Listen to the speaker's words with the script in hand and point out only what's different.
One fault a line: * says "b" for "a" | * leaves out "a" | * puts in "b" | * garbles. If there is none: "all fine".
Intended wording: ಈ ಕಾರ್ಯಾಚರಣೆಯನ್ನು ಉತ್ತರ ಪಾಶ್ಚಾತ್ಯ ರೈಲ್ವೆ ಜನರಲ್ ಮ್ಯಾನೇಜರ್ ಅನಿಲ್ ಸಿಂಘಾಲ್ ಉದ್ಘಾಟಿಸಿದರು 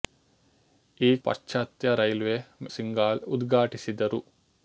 * leaves out "ಕಾರ್ಯಾಚರಣೆಯನ್ನು ಉತ್ತರ"
* leaves out "ಜನರಲ್ ಮ್ಯಾನೇಜರ್ ಅನಿಲ್"